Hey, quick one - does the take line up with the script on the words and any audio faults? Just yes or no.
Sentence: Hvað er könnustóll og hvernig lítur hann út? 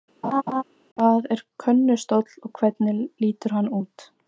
no